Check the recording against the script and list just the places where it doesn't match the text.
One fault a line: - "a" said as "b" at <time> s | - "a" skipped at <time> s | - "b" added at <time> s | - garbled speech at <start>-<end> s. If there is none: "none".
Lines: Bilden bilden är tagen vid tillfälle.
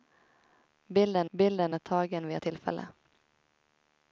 none